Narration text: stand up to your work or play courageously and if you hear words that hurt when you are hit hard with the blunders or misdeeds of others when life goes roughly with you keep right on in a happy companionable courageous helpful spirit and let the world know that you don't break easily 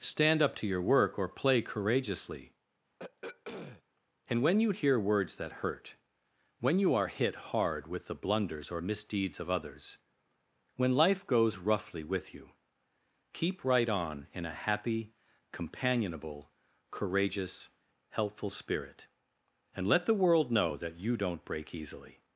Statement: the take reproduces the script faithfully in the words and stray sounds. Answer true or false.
false